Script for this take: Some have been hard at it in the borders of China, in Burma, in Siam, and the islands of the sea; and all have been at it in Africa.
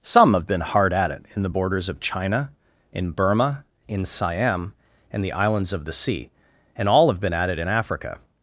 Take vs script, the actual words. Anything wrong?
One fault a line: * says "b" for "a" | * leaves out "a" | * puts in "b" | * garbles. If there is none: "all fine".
all fine